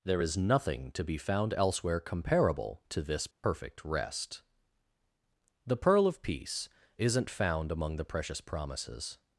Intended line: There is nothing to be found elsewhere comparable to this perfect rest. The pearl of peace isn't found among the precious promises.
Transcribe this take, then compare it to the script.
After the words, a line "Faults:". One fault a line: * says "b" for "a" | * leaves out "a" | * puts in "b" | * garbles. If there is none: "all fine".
There is nothing to be found elsewhere comparable to this perfect rest. The pearl of peace isn't found among the precious promises.
Faults:
all fine